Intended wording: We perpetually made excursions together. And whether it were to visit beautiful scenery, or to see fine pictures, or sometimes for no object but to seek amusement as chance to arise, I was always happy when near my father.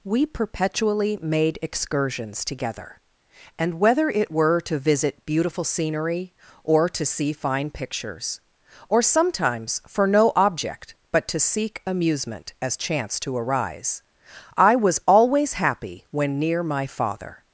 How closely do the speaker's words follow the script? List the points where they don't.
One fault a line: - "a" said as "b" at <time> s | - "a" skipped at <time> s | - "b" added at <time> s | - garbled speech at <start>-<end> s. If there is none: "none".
none